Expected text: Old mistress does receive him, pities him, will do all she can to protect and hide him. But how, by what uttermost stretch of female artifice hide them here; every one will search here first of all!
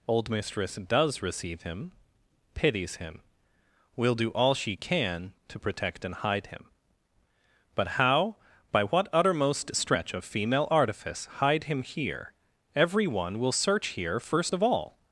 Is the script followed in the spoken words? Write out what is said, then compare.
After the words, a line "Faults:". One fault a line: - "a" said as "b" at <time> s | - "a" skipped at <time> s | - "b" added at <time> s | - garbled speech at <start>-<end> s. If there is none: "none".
Old mistress does receive him, pities him, will do all she can to protect and hide him. But how, by what uttermost stretch of female artifice hide him here; every one will search here first of all!
Faults:
- "them" said as "him" at 11.7 s